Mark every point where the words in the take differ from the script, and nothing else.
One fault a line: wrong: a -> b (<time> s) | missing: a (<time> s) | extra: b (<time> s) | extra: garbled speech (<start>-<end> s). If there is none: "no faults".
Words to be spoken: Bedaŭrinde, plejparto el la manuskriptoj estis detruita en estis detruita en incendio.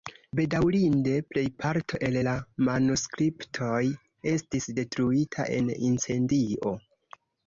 missing: estis detruita en (5.7 s)